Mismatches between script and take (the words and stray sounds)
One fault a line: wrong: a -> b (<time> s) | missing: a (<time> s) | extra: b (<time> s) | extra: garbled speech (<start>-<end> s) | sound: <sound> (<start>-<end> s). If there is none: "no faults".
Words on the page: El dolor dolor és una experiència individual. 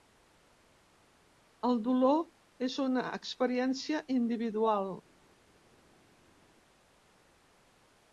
missing: dolor (2.2 s)